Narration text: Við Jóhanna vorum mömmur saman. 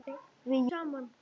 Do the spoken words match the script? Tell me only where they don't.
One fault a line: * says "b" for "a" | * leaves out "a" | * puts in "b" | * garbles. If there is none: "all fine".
* leaves out "Jóhanna vorum mömmur"